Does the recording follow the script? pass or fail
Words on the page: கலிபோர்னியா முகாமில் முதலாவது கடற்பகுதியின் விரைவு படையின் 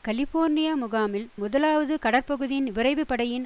pass